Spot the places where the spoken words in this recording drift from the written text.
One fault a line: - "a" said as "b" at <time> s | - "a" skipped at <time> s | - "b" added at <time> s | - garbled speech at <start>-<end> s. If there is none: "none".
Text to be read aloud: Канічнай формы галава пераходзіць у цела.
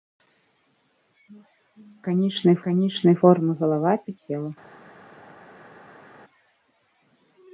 - "канічнай" added at 2.7 s
- "пераходзіць" skipped at 3.9 s